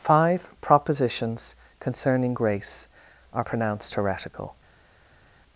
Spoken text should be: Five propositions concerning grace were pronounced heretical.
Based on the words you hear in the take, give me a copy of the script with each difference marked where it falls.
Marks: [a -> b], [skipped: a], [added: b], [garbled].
Five propositions concerning grace [were -> are] pronounced heretical.